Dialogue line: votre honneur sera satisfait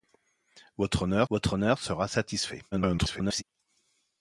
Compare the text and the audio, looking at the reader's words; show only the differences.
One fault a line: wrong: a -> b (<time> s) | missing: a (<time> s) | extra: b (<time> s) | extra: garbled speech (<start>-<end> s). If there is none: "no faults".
extra: votre honneur (1.3 s)
extra: garbled speech (2.7-3.4 s)